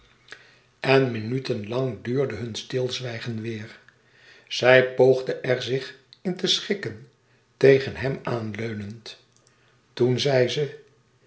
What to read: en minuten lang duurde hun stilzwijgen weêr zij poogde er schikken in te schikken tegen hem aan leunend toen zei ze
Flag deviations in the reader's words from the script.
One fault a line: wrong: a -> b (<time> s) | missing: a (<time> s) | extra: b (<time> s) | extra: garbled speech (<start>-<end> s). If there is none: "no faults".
wrong: schikken -> zich (5.6 s)